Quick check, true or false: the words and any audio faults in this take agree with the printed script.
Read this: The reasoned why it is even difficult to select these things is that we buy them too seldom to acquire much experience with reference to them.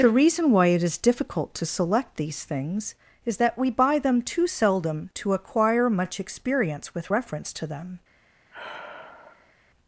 false